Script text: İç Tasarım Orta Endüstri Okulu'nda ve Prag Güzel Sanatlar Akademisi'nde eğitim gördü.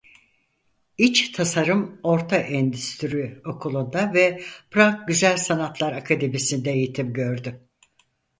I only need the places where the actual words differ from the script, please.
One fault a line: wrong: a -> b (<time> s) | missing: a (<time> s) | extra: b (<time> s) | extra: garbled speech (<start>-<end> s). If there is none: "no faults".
no faults